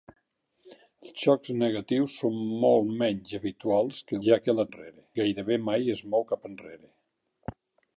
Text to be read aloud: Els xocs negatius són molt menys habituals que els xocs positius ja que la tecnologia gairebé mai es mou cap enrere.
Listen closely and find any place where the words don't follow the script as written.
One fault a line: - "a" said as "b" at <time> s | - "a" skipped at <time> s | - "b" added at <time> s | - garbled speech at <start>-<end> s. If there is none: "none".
- "els xocs positius" skipped at 4.2 s
- "tecnologia" said as "enrere" at 4.7 s